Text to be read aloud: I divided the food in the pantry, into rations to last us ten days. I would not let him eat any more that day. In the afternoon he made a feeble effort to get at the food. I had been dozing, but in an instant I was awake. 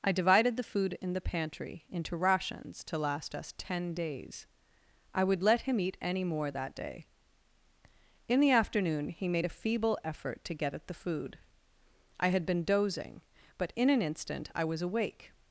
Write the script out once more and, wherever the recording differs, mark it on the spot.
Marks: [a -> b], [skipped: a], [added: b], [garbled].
I divided the food in the pantry, into rations to last us ten days. I would [skipped: not] let him eat any more that day. In the afternoon he made a feeble effort to get at the food. I had been dozing, but in an instant I was awake.